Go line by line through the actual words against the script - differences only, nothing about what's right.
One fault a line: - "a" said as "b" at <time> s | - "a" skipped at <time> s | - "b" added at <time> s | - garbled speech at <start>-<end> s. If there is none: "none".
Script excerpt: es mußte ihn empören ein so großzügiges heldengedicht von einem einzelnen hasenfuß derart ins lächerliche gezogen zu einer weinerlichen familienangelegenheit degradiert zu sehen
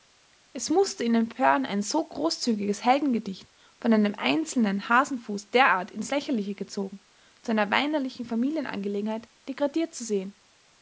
none